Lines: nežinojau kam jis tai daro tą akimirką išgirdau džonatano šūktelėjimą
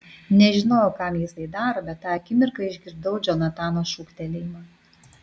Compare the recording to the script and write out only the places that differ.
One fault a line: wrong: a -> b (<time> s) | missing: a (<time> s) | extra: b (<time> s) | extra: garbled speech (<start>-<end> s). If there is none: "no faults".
extra: bet (1.9 s)